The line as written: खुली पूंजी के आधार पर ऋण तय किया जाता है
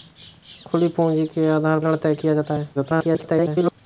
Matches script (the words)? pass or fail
fail